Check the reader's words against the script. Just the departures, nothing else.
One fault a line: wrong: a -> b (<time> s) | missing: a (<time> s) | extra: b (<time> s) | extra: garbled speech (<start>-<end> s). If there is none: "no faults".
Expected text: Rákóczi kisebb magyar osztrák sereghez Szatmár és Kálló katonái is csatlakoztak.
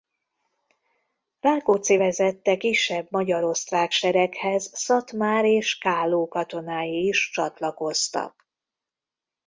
extra: vezette (2.0 s)